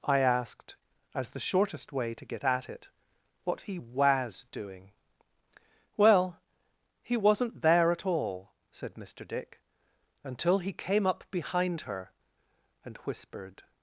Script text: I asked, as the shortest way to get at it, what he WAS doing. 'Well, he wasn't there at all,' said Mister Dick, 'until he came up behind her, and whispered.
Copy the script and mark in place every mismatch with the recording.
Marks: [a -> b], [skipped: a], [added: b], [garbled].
I asked, as the shortest way to get at it, what he WAS doing. 'Well, he wasn't there at all,' said Mister Dick, 'until he came up behind her, and whispered.